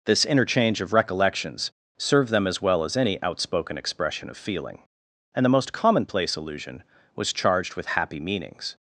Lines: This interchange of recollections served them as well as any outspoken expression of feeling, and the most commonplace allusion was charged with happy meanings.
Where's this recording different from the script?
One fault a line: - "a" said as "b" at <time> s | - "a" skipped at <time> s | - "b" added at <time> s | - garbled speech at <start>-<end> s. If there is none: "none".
none